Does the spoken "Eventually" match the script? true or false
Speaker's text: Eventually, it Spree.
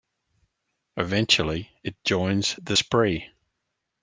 true